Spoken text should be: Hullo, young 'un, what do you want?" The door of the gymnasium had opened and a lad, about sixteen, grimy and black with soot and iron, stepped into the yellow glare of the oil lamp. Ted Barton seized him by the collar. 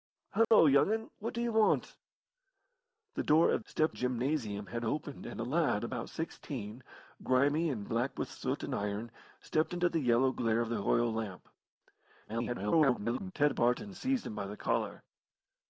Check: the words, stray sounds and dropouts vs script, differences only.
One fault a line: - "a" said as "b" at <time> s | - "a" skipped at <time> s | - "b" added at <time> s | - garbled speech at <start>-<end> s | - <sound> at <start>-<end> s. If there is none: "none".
- dropout at 0.4-0.5 s
- "the" said as "stepped" at 3.6 s
- garbled speech at 12.3-13.3 s